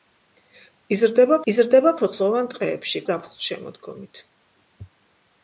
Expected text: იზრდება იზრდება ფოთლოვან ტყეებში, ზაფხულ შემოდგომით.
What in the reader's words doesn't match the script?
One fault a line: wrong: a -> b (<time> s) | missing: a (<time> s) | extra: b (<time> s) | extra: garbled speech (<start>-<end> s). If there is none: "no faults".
no faults